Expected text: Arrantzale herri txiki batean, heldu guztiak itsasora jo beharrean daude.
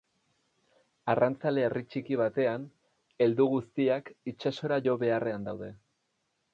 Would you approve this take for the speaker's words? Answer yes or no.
yes